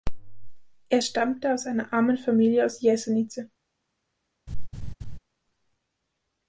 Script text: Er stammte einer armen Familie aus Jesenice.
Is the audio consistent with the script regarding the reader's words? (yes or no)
no